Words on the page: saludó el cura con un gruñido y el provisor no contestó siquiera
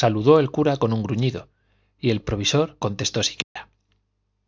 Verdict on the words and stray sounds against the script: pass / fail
fail